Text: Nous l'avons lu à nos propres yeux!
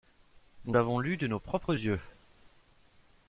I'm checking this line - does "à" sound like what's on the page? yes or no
no